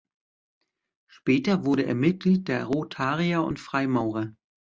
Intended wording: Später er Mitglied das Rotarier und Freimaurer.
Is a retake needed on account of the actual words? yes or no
yes